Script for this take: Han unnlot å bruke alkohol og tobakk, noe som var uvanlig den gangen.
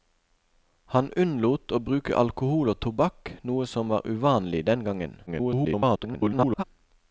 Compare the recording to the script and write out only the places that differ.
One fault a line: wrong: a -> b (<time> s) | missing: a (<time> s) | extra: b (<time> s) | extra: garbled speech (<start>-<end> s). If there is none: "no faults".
extra: garbled speech (5.3-6.6 s)